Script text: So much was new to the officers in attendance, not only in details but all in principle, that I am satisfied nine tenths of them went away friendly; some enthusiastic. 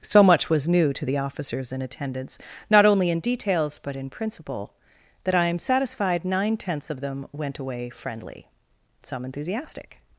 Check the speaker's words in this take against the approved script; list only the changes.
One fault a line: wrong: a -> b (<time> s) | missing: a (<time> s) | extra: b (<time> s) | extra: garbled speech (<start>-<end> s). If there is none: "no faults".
missing: all (4.0 s)